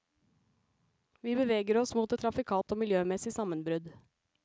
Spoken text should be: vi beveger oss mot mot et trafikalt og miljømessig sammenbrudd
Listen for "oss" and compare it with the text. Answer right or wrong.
right